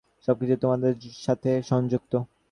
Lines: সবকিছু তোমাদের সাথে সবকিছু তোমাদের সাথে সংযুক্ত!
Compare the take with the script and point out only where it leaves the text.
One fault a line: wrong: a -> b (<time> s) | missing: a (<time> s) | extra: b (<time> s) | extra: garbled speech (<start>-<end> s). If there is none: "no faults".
missing: সবকিছু তোমাদের সাথে (1.5 s)